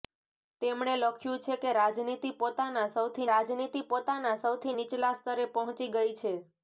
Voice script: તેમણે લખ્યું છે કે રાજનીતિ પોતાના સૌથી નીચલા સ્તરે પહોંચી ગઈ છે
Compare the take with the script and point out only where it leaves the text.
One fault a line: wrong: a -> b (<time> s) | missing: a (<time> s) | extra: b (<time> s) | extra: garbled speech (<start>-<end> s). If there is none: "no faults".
extra: રાજનીતિ પોતાના સૌથી (3.3 s)